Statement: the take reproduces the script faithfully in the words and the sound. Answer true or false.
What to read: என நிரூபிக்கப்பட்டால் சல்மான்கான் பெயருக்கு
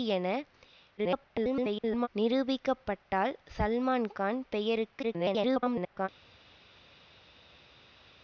false